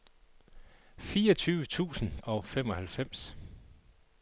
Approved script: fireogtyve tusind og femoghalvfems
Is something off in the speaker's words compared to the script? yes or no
no